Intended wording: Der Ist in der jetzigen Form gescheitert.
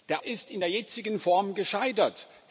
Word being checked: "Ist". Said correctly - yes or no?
yes